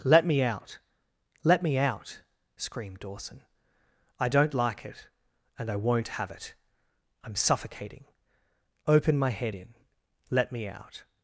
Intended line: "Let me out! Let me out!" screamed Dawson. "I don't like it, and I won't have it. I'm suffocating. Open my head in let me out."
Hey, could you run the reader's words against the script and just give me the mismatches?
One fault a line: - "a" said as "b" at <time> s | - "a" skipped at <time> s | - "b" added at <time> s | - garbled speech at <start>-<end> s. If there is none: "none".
none